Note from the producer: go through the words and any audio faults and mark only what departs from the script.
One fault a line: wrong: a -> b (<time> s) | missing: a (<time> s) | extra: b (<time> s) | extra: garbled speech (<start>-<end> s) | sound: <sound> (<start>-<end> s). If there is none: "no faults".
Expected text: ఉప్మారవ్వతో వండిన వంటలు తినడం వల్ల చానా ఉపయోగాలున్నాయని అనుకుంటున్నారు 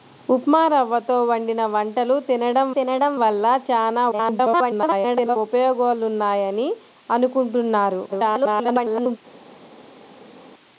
extra: తినడం (2.8 s)
extra: garbled speech (4.1-5.4 s)
extra: garbled speech (8.1-9.2 s)